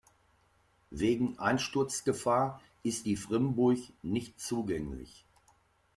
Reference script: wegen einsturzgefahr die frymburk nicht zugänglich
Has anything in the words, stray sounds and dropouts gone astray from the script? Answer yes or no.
yes